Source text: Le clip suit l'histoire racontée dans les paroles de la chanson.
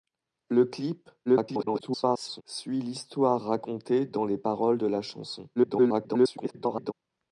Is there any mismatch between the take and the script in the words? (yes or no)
yes